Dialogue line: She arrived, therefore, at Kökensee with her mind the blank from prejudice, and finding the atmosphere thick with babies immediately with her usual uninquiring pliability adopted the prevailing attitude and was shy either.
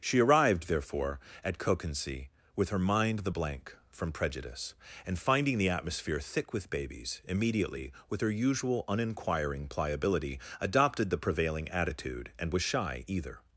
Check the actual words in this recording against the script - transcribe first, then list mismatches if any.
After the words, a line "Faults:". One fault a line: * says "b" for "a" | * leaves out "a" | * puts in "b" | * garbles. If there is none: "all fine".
She arrived, therefore, at Kökensee with her mind the blank from prejudice, and finding the atmosphere thick with babies immediately with her usual uninquiring pliability adopted the prevailing attitude and was shy either.
Faults:
all fine